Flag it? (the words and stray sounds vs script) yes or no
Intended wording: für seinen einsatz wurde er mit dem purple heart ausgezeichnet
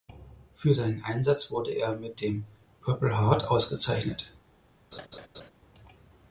yes